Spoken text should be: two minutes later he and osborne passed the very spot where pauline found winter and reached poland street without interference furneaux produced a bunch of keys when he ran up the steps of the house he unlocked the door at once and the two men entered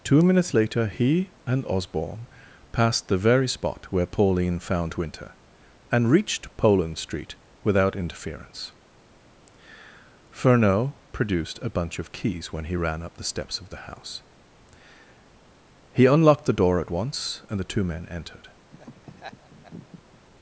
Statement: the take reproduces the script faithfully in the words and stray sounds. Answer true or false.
false